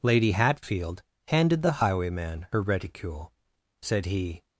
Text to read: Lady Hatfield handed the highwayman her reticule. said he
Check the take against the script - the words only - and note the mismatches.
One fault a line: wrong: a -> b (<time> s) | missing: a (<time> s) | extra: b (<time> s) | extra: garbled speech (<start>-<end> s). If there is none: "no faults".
no faults